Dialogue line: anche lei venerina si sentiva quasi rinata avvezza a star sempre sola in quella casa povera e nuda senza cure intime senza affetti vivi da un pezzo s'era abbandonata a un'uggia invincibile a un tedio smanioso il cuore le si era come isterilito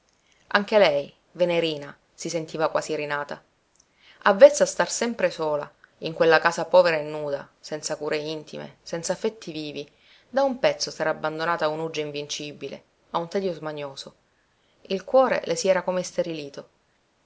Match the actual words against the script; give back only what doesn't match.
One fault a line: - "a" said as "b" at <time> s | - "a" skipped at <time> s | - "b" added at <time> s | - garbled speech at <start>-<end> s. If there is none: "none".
none